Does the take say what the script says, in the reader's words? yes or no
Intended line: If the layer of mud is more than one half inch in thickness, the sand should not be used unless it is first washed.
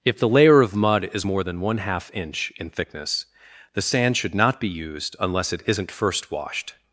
no